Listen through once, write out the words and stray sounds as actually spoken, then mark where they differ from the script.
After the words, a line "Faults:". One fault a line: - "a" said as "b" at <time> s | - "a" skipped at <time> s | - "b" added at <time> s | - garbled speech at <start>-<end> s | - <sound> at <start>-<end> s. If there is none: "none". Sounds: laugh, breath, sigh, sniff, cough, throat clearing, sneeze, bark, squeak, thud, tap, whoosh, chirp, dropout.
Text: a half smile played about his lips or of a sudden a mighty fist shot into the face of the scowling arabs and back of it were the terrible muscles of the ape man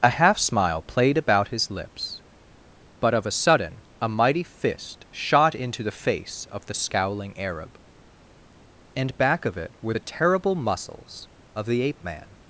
a half smile played about his lips but of a sudden a mighty fist shot into the face of the scowling arab and back of it were the terrible muscles of the ape man
Faults:
- "or" said as "but" at 3.0 s
- "arabs" said as "arab" at 7.4 s